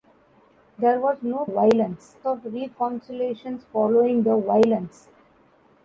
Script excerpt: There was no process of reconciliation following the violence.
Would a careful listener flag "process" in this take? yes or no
yes